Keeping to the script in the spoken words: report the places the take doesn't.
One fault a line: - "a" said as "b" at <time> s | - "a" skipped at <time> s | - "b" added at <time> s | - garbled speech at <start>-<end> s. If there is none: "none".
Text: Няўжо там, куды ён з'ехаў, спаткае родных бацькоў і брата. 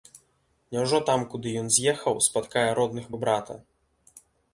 - "бацькоў" skipped at 3.0 s